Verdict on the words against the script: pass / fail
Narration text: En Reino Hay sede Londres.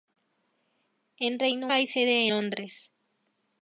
pass